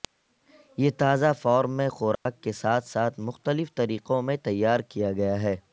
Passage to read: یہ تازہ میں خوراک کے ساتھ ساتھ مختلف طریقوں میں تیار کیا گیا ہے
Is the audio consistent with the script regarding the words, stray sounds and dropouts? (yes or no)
no